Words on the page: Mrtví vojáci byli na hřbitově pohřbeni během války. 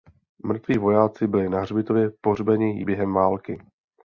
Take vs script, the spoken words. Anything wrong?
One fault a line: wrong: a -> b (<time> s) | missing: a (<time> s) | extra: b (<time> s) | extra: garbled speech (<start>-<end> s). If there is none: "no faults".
no faults